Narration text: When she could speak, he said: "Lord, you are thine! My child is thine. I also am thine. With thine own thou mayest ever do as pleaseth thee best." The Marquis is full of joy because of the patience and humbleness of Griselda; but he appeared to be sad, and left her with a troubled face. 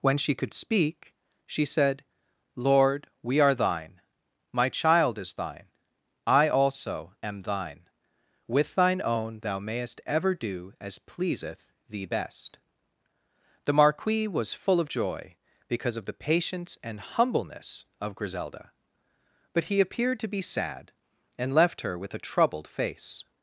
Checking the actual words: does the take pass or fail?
fail